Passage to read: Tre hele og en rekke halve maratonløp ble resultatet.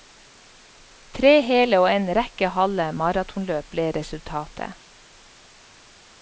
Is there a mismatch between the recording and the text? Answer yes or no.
no